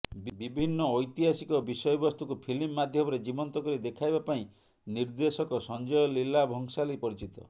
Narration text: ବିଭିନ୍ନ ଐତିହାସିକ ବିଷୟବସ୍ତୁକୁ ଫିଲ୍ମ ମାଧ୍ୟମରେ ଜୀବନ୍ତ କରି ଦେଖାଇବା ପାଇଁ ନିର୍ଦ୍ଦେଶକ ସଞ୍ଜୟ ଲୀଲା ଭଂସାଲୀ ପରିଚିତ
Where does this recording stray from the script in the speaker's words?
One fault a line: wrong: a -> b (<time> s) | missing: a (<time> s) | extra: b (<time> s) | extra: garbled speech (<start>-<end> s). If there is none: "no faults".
no faults